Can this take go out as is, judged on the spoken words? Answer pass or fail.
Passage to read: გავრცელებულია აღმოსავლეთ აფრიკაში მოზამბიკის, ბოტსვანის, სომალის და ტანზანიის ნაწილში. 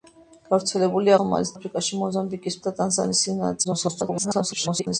fail